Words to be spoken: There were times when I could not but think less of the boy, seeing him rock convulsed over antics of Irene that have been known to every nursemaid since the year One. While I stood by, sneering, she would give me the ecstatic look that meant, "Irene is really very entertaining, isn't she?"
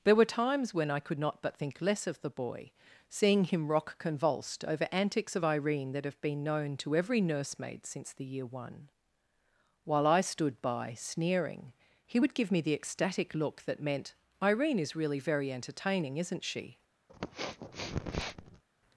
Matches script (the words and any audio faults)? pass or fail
fail